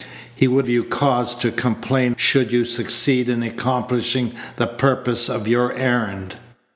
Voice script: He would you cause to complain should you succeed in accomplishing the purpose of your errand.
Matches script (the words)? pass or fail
pass